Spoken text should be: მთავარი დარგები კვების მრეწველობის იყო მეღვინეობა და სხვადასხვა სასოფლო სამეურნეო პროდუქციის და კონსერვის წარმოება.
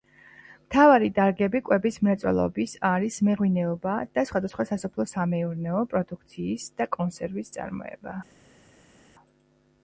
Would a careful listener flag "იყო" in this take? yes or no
yes